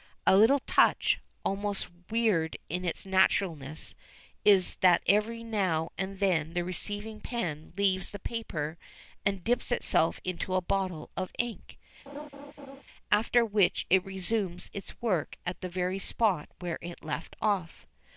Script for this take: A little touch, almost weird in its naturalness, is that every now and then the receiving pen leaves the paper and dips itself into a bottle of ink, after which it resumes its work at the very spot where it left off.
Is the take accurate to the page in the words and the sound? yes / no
no